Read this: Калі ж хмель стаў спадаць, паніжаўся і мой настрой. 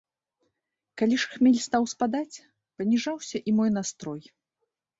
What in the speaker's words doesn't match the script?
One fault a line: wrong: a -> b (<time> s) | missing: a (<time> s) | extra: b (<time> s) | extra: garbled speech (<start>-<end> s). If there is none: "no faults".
no faults